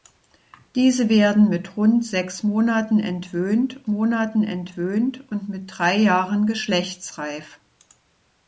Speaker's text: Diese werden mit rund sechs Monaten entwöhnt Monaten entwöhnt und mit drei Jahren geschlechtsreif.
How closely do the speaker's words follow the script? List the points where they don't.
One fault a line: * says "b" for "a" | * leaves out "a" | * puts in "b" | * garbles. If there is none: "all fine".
all fine